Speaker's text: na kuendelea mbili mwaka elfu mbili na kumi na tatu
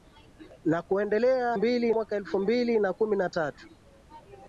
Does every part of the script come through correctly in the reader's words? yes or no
yes